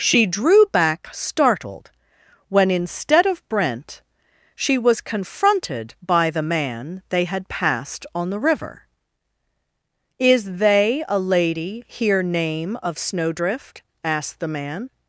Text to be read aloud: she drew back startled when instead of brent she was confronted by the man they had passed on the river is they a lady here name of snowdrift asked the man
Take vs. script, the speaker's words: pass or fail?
pass